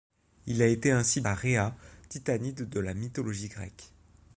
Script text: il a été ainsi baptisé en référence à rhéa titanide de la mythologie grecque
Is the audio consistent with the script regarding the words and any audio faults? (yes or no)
no